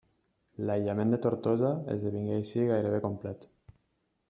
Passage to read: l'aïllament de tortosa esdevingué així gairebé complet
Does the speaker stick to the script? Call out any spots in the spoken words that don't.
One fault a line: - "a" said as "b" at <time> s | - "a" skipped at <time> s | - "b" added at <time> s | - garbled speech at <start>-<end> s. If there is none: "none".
none